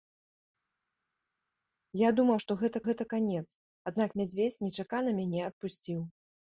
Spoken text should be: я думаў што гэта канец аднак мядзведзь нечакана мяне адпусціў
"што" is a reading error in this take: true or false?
false